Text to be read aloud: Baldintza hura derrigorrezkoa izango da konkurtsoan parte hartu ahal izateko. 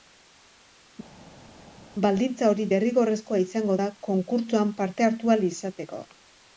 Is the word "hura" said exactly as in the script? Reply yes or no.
no